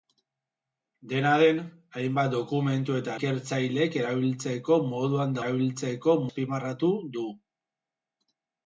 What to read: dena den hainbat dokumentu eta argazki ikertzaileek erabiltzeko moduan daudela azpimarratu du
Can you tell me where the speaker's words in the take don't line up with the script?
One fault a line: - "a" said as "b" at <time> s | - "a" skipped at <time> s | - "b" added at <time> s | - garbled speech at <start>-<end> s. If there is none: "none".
- "argazki" skipped at 3.1 s
- "daudela" said as "erabiltzeko" at 5.4 s